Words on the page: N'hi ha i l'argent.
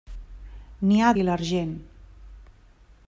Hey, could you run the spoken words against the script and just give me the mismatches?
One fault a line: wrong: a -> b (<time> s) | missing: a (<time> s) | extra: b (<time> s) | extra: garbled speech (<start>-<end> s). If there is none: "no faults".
no faults